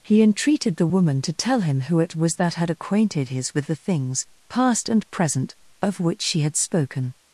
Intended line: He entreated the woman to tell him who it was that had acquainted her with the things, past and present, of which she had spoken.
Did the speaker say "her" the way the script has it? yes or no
no